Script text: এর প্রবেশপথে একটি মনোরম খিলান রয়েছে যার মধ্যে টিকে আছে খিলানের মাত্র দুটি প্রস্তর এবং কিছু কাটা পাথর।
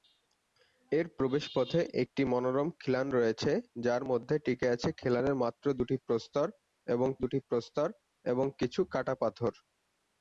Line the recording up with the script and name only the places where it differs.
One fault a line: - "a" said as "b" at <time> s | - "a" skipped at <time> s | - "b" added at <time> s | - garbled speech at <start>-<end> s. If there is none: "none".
- "দুটি প্রস্তর এবং" added at 7.2 s